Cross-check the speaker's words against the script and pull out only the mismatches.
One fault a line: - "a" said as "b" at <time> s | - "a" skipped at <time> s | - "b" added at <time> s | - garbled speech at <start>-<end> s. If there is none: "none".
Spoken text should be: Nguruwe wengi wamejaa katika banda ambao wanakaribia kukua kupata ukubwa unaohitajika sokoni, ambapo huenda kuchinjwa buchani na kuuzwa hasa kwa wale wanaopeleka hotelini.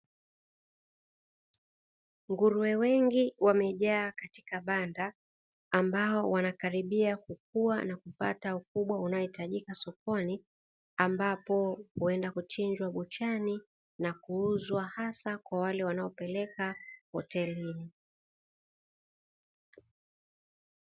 - "na" added at 7.8 s